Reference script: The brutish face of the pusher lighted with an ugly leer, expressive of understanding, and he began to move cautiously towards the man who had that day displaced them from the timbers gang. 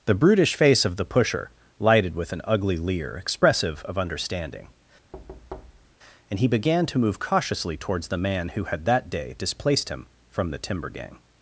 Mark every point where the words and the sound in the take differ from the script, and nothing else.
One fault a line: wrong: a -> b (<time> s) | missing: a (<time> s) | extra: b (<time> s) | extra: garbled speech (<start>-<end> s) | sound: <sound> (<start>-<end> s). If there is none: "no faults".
sound: thud (5.1-6.0 s)
wrong: them -> him (9.9 s)
wrong: timbers -> timber (10.6 s)